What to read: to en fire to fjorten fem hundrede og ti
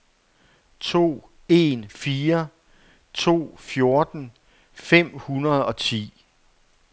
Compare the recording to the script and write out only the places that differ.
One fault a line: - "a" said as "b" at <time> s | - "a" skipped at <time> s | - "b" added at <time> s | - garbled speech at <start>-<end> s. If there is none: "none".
none